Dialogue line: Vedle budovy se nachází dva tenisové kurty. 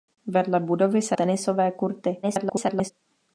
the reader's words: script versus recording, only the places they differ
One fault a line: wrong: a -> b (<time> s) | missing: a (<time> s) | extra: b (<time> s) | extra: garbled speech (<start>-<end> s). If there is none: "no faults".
missing: nachází dva (1.2 s)
extra: garbled speech (2.2-2.9 s)